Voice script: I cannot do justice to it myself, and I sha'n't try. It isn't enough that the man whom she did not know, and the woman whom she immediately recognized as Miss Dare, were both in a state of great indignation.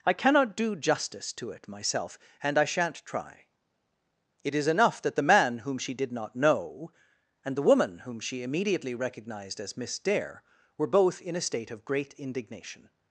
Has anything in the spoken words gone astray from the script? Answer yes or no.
yes